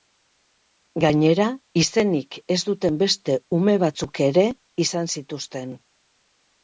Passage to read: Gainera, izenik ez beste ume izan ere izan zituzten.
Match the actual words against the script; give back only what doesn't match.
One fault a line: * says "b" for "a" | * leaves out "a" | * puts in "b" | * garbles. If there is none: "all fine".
* puts in "duten"
* says "batzuk" for "izan"